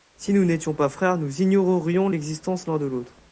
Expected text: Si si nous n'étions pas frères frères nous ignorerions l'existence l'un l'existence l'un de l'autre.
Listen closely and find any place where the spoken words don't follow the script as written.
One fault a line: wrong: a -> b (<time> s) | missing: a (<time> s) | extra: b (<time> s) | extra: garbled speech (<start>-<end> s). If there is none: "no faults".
missing: si (0.3 s)
missing: frères (1.2 s)
missing: l'existence l'un (2.8 s)